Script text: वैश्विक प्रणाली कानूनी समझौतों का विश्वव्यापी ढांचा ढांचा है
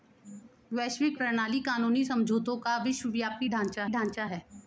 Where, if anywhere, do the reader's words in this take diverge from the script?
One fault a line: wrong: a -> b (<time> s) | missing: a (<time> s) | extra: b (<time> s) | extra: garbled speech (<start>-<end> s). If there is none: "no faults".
no faults